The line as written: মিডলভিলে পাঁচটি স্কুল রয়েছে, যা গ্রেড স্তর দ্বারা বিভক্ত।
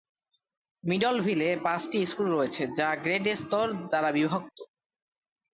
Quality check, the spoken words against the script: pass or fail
pass